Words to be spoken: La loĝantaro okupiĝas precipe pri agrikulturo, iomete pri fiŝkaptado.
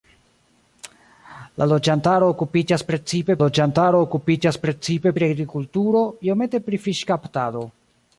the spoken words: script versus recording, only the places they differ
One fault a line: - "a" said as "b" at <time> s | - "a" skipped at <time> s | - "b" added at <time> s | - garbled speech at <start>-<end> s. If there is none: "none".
- "loĝantaro okupiĝas precipe" added at 3.4 s